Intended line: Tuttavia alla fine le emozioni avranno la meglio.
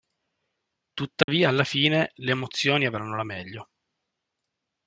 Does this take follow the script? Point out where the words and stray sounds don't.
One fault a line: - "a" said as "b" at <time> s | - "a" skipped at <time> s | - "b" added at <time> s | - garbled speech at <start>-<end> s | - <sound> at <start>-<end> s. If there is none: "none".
- dropout at 1.2-1.3 s